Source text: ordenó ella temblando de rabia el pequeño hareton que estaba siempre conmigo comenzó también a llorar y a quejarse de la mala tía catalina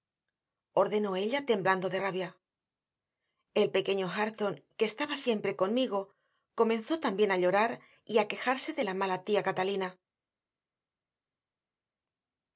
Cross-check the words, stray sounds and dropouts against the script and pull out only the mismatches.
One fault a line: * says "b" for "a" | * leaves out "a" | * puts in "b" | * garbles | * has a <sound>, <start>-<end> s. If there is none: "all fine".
all fine